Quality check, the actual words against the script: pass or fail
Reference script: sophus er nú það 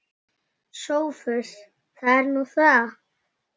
fail